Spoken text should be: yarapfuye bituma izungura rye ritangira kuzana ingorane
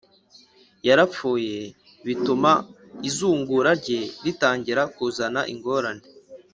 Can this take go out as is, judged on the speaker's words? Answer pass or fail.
pass